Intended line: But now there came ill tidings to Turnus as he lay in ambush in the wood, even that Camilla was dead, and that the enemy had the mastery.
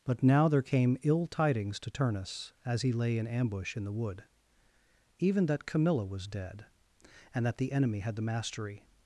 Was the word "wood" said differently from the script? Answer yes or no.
no